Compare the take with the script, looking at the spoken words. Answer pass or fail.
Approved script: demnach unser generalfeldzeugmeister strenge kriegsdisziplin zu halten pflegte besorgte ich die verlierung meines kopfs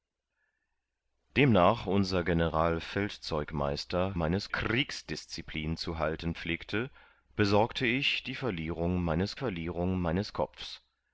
fail